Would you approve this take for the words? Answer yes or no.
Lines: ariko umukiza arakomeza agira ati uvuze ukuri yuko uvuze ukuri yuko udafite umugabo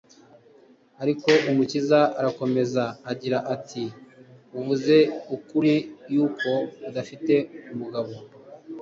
no